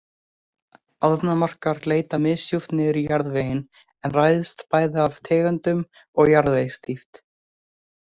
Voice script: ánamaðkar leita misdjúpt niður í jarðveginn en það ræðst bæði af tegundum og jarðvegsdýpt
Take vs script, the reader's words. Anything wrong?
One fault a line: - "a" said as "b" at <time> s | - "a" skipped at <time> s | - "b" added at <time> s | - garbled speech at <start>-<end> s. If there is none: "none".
- "það" skipped at 4.1 s